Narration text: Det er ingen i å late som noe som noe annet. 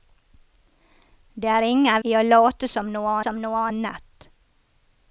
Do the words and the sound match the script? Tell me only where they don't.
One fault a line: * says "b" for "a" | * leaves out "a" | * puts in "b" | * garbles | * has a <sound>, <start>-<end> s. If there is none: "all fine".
all fine